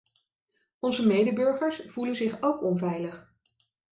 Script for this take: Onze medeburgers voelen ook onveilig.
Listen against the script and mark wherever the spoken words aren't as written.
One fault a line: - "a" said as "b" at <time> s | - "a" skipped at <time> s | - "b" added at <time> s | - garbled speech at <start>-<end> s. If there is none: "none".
- "zich" added at 2.1 s